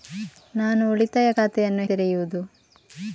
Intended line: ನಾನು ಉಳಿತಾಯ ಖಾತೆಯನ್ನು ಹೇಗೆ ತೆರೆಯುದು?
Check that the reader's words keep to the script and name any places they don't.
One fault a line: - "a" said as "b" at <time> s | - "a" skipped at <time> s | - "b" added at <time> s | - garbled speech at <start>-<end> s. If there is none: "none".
- "ಹೇಗೆ" skipped at 1.8 s